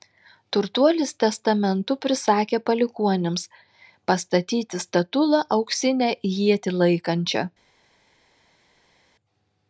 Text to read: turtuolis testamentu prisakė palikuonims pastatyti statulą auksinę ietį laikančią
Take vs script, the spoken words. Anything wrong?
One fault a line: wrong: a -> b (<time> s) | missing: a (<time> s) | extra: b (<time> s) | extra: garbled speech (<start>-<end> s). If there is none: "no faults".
no faults